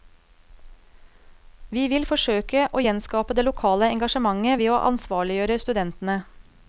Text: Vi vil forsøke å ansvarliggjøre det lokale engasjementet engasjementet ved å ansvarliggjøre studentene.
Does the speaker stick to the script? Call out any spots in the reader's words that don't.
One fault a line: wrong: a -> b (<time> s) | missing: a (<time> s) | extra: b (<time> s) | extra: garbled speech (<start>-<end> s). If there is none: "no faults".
wrong: ansvarliggjøre -> gjenskape (2.8 s)
missing: engasjementet (4.6 s)